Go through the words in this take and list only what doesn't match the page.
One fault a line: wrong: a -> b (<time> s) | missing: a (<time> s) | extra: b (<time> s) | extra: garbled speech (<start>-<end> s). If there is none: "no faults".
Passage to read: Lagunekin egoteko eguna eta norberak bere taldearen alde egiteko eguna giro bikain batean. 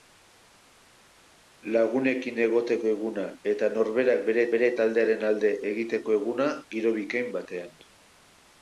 extra: bere (4.6 s)